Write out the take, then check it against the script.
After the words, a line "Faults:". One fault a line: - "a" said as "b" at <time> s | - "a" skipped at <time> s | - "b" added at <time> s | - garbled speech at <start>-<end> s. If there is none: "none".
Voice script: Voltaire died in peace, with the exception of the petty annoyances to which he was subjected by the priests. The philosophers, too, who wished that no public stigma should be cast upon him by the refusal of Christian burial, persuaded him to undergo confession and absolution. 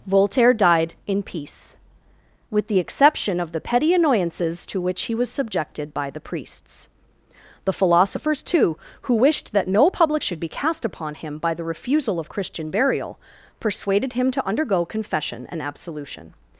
Voltaire died in peace, with the exception of the petty annoyances to which he was subjected by the priests. The philosophers, too, who wished that no public should be cast upon him by the refusal of Christian burial, persuaded him to undergo confession and absolution.
Faults:
- "stigma" skipped at 10.2 s